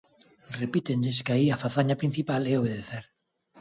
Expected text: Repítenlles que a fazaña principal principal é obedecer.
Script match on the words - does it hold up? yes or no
no